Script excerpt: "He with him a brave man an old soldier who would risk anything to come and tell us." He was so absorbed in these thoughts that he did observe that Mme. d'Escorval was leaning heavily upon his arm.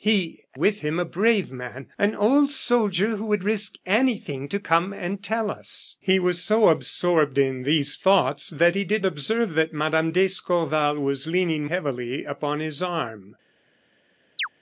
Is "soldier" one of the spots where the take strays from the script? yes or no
no